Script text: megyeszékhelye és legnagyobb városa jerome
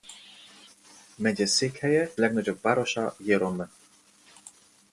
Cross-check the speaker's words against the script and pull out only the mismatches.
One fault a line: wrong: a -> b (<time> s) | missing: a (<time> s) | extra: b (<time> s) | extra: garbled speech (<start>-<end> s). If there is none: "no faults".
missing: és (2.1 s)